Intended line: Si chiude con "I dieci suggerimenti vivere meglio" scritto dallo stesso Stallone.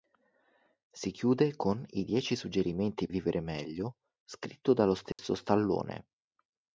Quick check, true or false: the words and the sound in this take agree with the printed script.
false